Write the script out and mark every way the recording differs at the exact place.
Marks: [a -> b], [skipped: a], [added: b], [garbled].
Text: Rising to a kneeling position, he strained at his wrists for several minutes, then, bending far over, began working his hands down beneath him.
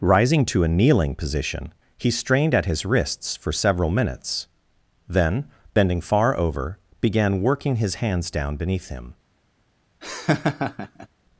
Rising to a kneeling position, he strained at his wrists for several minutes, then, bending far over, began working his hands down beneath him.